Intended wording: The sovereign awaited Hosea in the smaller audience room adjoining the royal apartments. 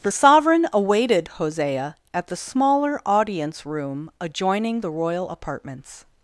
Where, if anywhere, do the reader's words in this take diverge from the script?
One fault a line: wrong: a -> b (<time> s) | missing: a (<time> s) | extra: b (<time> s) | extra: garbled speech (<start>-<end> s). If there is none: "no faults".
wrong: in -> at (2.1 s)